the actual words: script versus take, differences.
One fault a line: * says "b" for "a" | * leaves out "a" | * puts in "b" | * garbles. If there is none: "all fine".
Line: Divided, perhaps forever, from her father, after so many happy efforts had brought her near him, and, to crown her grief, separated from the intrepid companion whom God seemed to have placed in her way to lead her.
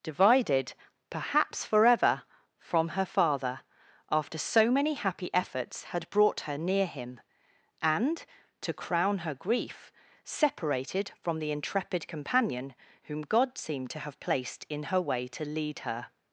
all fine